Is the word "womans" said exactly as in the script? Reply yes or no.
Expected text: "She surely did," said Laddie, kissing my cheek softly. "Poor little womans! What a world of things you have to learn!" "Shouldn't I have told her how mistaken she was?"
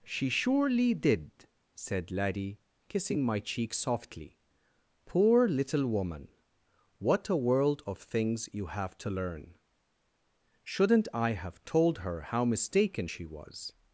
no